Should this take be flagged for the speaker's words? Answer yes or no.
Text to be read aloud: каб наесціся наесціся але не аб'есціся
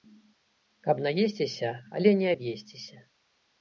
yes